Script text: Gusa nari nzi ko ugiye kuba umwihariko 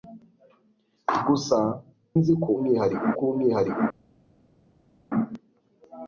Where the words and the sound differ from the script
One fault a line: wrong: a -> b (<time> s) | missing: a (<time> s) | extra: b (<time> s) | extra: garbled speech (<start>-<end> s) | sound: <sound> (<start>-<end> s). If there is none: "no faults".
missing: nari (1.6 s)
wrong: ugiye -> umwihariko (2.6 s)